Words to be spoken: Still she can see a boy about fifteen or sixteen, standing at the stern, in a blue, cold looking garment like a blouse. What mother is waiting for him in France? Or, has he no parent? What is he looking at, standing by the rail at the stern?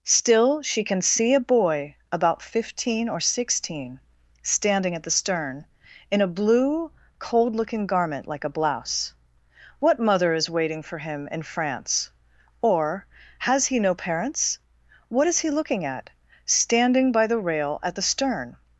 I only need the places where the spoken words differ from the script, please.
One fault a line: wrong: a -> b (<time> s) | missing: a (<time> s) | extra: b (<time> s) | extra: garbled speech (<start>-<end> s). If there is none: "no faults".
wrong: parent -> parents (13.9 s)